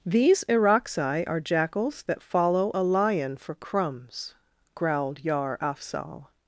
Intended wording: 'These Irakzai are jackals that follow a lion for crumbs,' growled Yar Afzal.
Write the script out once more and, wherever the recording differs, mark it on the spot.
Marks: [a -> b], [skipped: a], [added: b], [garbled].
'These Irakzai are jackals that follow a lion for crumbs,' growled Yar Afzal.